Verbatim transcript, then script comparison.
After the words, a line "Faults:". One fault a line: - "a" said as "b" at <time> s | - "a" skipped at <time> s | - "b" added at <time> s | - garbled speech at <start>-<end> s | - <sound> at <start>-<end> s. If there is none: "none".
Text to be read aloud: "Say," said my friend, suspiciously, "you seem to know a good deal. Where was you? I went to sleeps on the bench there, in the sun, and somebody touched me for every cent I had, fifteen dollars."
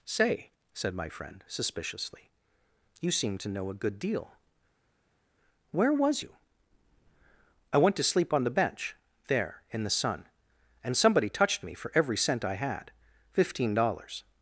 "Say," said my friend, suspiciously, "you seem to know a good deal. Where was you? I went to sleep on the bench there, in the sun, and somebody touched me for every cent I had, fifteen dollars."
Faults:
- "sleeps" said as "sleep" at 8.0 s